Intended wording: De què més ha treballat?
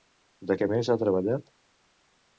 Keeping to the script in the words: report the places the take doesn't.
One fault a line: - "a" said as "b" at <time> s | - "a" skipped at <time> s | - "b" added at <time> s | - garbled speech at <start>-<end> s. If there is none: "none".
none